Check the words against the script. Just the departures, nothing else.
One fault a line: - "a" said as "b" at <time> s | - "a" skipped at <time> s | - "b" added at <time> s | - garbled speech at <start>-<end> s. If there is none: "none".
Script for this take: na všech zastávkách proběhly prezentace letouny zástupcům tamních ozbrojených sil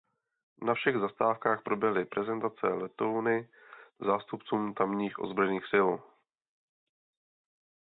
none